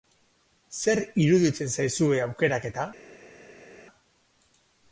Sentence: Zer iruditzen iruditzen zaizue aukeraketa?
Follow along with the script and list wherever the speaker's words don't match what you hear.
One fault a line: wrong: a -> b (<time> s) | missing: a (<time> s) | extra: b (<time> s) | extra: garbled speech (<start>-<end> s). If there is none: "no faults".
missing: iruditzen (1.7 s)